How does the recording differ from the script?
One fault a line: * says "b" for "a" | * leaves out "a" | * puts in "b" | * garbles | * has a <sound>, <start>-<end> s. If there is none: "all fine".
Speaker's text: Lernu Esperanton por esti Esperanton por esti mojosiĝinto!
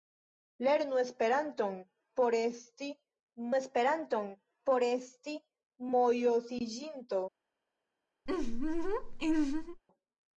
* has a laugh, 8.3-9.8 s